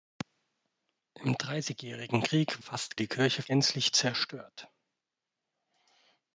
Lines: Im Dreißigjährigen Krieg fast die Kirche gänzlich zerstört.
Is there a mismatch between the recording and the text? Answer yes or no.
no